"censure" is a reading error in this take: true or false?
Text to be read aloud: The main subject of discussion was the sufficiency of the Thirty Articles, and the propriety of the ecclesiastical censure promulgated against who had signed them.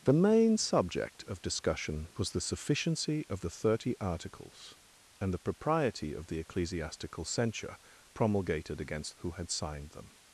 false